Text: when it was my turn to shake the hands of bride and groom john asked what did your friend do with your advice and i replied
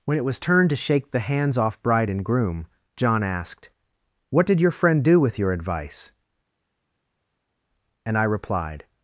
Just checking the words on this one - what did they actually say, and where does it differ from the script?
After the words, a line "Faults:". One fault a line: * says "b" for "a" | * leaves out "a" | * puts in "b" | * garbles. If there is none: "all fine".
when it was turn to shake the hands off bride and groom john asked what did your friend do with your advice and i replied
Faults:
* leaves out "my"
* says "off" for "of"